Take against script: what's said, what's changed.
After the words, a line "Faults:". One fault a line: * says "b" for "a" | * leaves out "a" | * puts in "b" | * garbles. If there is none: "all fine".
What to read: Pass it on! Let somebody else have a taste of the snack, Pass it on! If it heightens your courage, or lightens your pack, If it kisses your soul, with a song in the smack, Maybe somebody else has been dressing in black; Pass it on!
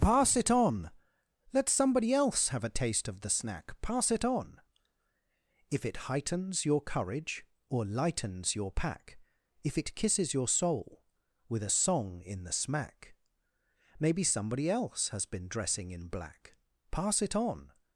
Pass it on! Let somebody else have a taste of the snack, Pass it on! If it heightens your courage, or lightens your pack, If it kisses your soul, with a song in the smack, Maybe somebody else has been dressing in black; Pass it on!
Faults:
all fine